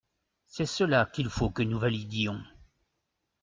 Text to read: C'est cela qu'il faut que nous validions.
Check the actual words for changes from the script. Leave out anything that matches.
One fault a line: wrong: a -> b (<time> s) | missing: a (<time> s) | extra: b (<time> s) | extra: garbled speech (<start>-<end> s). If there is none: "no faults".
no faults